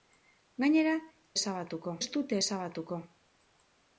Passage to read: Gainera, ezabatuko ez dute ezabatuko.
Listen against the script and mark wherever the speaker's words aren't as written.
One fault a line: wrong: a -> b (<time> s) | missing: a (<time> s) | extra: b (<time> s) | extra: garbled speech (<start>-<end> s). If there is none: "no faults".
no faults